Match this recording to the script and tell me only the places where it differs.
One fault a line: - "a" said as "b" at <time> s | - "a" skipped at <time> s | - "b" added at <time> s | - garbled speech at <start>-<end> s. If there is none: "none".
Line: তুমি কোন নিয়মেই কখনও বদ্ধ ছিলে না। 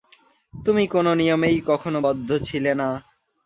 none